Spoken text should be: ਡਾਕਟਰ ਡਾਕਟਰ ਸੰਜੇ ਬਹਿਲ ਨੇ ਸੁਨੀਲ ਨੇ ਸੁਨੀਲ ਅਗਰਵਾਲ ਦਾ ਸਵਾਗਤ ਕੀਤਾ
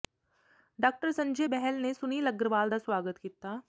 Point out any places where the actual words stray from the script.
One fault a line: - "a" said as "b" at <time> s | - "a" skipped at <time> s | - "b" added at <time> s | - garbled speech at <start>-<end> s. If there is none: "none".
- "ਡਾਕਟਰ" skipped at 1.1 s
- "ਨੇ ਸੁਨੀਲ" skipped at 2.3 s